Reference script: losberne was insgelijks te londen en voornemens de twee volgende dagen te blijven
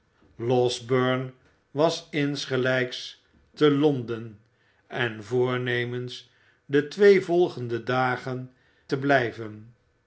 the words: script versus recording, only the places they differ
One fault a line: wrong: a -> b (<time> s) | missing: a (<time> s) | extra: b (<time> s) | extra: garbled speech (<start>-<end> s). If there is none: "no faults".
no faults